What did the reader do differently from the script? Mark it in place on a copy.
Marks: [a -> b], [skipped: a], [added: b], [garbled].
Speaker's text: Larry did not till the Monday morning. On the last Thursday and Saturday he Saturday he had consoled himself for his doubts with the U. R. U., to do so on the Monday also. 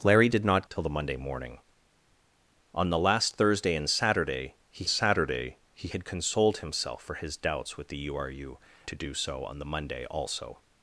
Larry did not till the Monday morning. On the last Thursday and Saturday he Saturday he had consoled himself for his doubts with the U. R. U., to do so on the Monday also.